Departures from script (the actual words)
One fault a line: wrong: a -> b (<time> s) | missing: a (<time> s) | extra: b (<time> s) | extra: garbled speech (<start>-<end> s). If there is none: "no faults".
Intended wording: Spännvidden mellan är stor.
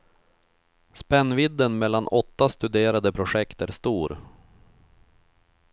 extra: åtta studerade projekt (2.1 s)